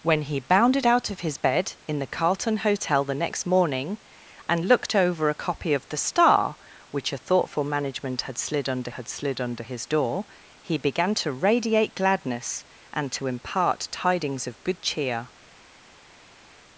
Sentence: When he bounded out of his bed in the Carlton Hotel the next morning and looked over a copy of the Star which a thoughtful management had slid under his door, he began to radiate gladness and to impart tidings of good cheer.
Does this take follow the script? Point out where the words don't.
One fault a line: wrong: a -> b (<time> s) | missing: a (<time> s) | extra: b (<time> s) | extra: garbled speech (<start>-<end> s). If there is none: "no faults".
extra: had slid under (8.9 s)